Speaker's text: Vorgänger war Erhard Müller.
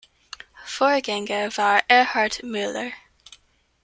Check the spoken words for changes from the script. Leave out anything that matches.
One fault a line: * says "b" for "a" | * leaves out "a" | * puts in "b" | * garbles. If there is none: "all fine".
all fine